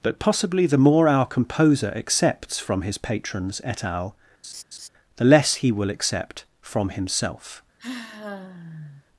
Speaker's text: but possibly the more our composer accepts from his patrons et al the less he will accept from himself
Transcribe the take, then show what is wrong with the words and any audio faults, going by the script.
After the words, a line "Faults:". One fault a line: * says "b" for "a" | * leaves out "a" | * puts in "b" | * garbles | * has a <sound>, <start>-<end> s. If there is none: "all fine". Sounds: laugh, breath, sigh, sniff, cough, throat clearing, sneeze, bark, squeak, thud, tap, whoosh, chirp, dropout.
but possibly the more our composer accepts from his patrons et al the less he will accept from himself
Faults:
* has a laugh, 4.4-4.9 s
* has a sigh, 7.8-9.0 s